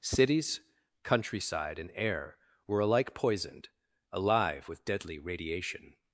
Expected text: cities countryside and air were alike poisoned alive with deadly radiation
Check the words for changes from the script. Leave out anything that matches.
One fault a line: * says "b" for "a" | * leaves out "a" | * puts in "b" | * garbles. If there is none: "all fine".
all fine